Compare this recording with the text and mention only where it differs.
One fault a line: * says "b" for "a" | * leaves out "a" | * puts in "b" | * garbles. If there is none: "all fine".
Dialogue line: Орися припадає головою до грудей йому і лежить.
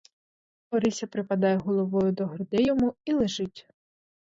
all fine